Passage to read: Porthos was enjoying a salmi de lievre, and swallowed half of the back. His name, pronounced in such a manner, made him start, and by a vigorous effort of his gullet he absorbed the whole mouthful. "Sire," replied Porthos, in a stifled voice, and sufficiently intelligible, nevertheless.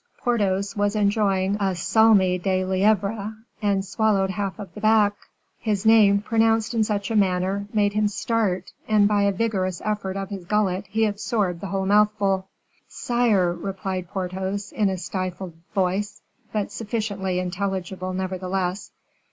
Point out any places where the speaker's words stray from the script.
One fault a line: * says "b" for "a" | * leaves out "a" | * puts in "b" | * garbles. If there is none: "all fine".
* says "but" for "and"